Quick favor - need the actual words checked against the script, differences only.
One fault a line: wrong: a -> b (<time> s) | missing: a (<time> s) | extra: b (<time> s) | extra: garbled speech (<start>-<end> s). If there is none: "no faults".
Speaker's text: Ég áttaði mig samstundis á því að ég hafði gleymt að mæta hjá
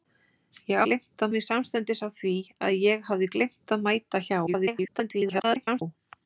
wrong: áttaði -> gleymt (0.9 s)
extra: garbled speech (4.5-5.8 s)